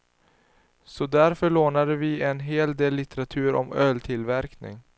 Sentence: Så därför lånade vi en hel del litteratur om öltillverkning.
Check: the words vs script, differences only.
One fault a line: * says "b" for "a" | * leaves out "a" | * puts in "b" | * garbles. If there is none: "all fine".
all fine